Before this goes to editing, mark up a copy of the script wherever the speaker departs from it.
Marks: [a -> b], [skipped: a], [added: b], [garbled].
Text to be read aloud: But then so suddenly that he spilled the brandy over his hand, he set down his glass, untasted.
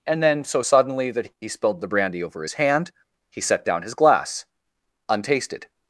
[But -> And] then so suddenly that he spilled the brandy over his hand, he set down his glass, untasted.